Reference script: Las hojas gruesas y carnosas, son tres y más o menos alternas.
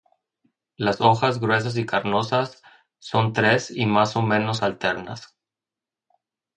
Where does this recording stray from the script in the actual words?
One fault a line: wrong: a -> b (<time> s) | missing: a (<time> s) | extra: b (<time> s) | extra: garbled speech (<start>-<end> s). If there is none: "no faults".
no faults